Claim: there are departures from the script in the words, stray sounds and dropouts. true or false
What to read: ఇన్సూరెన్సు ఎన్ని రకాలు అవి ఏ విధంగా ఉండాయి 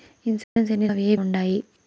true